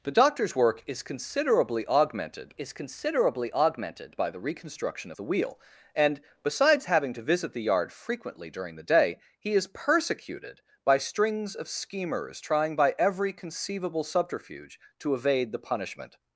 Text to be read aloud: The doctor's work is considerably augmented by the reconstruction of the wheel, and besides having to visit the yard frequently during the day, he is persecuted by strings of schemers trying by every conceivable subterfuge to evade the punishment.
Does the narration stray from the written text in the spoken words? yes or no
yes